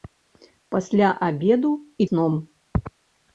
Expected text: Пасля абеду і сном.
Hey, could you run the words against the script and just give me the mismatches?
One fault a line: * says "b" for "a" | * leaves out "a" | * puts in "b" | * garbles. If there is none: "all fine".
all fine